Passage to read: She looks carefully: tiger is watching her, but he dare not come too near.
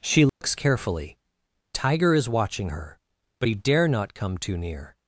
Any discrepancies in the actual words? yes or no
no